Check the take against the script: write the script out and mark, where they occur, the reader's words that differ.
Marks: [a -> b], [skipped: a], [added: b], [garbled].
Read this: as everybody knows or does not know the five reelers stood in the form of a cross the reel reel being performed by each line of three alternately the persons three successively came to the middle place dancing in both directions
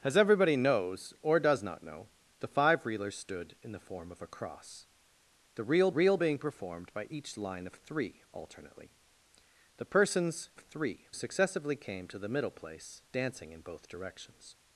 as everybody knows or does not know the five reelers stood in the form of a cross the reel reel being performed by each line of three alternately the persons three successively came to the middle place dancing in both directions